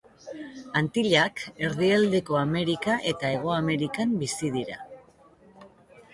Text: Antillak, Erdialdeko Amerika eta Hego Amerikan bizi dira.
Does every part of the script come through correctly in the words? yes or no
yes